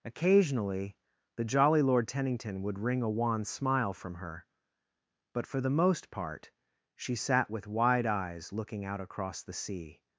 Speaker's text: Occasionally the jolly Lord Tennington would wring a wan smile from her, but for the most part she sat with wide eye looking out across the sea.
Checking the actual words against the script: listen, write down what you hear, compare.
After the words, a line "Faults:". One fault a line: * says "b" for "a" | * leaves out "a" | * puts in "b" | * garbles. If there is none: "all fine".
Occasionally the jolly Lord Tennington would wring a wan smile from her, but for the most part she sat with wide eyes looking out across the sea.
Faults:
* says "eyes" for "eye"